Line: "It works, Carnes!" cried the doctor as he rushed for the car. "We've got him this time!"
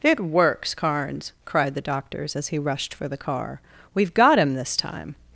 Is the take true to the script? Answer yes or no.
no